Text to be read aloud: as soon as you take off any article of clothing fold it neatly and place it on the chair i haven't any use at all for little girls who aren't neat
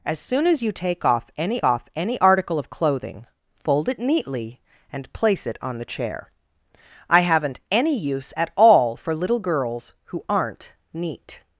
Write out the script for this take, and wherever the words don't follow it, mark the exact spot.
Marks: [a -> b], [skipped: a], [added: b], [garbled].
as soon as you take off any [added: off any] article of clothing fold it neatly and place it on the chair i haven't any use at all for little girls who aren't neat